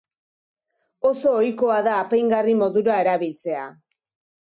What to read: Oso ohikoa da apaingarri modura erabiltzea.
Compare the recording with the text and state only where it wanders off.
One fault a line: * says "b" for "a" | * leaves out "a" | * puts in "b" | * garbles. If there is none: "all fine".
all fine